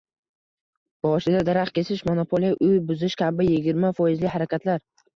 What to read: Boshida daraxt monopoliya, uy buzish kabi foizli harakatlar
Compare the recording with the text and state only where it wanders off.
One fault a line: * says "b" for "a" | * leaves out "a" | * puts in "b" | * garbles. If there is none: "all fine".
* puts in "kesish"
* puts in "yigirma"